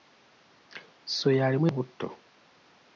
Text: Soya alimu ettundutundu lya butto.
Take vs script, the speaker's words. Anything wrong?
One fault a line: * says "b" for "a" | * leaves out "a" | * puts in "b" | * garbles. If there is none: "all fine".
* leaves out "ettundutundu lya"